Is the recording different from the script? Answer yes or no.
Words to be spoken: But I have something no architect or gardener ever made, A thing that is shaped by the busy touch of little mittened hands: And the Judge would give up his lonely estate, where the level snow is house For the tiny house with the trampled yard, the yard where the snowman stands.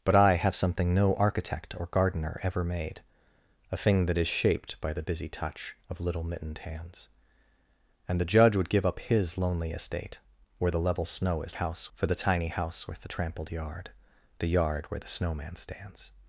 no